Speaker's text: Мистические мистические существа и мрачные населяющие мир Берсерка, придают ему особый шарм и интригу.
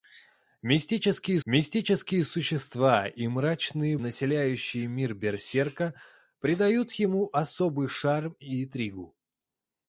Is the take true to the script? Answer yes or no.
yes